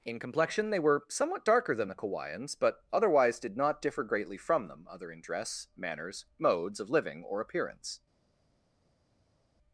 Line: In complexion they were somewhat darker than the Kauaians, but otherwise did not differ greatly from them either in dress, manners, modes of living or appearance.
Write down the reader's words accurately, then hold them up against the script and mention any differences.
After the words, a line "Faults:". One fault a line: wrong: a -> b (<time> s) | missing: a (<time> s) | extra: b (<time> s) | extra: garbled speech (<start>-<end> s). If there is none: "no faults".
In complexion they were somewhat darker than the Kauaians, but otherwise did not differ greatly from them other in dress, manners, modes of living or appearance.
Faults:
wrong: either -> other (4.9 s)